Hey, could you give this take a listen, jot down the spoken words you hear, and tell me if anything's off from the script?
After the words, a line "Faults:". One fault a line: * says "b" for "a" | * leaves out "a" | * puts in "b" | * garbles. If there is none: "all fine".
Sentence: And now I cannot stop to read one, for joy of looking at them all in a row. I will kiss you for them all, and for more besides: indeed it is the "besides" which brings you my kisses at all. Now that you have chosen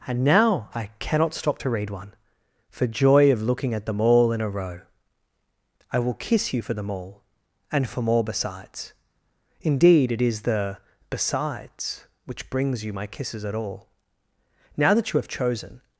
And now I cannot stop to read one, for joy of looking at them all in a row. I will kiss you for them all, and for more besides: indeed it is the "besides" which brings you my kisses at all. Now that you have chosen
Faults:
all fine